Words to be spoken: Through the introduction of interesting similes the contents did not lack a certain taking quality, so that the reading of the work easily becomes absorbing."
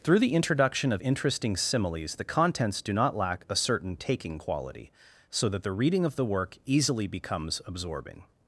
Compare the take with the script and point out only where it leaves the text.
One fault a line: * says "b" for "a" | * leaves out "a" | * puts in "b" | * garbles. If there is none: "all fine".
* says "do" for "did"